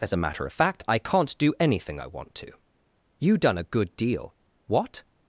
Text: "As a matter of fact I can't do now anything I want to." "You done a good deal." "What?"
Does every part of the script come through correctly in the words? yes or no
no